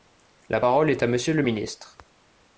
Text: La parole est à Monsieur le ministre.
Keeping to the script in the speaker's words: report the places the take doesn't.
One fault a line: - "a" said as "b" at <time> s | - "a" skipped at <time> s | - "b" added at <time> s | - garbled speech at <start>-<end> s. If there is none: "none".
none